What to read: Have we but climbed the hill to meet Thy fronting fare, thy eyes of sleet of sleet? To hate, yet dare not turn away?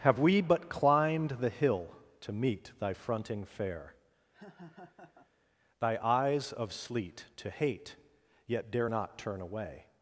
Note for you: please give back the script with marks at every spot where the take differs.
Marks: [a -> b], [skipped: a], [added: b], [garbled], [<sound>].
Have we but climbed the hill to meet Thy fronting fare, [laugh] thy eyes of sleet [skipped: of sleet?] To hate, yet dare not turn away?